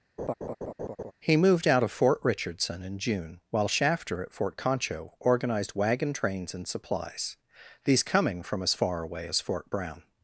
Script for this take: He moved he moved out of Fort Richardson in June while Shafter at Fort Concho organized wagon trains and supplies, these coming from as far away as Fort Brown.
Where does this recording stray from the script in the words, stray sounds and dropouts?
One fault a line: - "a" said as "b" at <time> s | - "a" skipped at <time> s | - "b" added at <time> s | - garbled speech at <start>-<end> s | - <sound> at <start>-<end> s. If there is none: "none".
- laugh at 0.2-1.1 s
- "he moved" skipped at 1.7 s